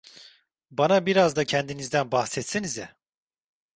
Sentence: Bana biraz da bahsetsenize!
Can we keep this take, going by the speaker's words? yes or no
no